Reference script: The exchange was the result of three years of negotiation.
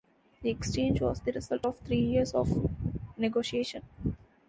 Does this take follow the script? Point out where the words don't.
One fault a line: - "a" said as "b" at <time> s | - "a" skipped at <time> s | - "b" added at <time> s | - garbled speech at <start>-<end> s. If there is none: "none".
none